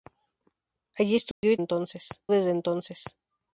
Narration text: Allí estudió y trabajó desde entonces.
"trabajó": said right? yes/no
no